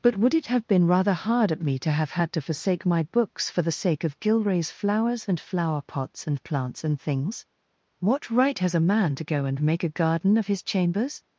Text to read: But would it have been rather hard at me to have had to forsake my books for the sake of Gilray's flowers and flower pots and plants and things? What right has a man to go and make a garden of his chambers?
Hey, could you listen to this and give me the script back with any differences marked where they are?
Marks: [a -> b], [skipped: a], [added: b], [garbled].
But would it have been rather hard at me to have had to forsake my books for the sake of Gilray's flowers and flower pots and plants and things? What right has a man to go and make a garden of his chambers?